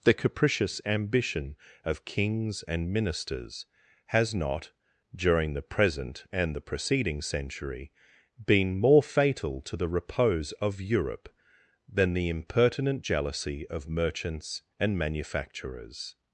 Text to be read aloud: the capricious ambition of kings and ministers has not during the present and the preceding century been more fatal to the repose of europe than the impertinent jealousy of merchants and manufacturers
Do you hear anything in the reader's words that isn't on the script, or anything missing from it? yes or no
no